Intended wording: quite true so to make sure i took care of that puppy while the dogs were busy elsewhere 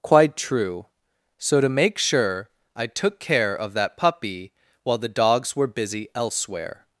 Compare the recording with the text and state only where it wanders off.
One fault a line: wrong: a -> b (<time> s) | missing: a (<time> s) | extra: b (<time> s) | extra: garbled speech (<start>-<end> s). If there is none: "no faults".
no faults